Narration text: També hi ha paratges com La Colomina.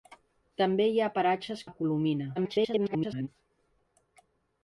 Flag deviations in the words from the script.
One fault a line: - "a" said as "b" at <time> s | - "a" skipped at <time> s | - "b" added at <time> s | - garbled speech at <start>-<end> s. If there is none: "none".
- "com" skipped at 1.6 s
- garbled speech at 2.4-3.3 s